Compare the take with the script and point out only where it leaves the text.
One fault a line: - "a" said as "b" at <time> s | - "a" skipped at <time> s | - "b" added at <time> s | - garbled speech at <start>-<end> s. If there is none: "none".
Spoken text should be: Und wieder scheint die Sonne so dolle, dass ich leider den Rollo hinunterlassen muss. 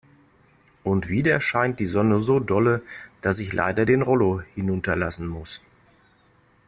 none